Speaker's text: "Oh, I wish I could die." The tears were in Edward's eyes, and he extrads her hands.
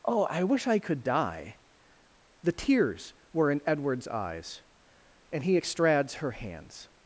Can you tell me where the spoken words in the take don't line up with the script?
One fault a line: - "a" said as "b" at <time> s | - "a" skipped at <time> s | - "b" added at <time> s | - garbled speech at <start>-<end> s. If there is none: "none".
none